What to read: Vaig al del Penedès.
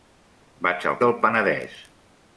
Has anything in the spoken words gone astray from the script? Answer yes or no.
no